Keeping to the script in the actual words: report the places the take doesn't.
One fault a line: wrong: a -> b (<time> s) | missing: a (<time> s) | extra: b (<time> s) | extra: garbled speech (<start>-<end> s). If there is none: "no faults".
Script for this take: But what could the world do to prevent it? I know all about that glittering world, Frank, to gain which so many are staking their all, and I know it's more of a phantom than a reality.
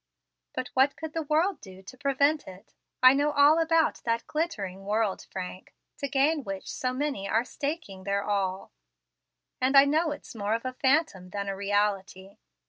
no faults